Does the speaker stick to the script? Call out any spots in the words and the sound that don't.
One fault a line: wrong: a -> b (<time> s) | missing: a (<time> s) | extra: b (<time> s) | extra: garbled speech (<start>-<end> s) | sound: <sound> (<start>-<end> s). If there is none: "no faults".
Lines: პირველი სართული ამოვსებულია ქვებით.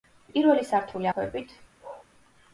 missing: ამოვსებულია (1.1 s)
sound: bark (1.8-2.1 s)